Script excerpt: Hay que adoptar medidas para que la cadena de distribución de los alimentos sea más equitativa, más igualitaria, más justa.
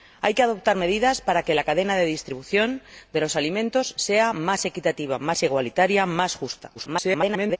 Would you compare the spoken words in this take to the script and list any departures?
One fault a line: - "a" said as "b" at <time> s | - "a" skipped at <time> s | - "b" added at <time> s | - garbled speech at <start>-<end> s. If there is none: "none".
- garbled speech at 6.7-7.6 s